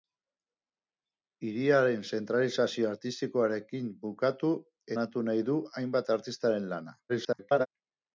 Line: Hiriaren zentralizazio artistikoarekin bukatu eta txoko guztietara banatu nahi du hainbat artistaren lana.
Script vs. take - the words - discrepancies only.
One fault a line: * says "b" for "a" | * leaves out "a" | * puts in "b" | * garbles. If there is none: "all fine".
* leaves out "eta txoko guztietara"
* garbles